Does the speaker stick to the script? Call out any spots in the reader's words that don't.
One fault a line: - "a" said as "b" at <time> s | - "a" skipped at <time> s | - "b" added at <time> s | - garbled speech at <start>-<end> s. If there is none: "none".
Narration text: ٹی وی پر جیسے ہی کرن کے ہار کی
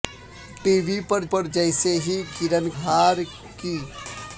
- "پر" added at 1.3 s
- "کے" skipped at 2.7 s